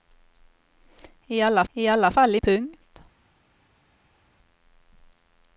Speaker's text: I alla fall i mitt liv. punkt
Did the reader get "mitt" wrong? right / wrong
wrong